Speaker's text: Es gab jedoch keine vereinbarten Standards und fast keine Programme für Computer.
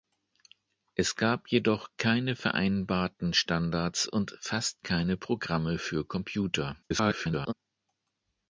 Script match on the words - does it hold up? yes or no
no